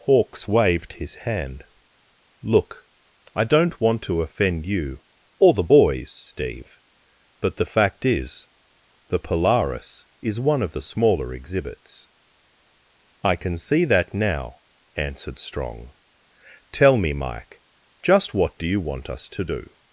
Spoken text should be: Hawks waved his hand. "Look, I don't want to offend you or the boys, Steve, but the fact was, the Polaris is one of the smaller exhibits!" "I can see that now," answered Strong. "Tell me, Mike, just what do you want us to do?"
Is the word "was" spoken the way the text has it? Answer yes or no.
no